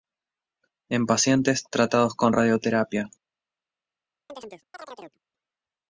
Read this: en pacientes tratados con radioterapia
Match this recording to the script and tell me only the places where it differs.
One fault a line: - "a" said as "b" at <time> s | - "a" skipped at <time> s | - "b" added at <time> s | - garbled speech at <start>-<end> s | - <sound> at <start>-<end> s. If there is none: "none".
- chirp at 4.3-5.2 s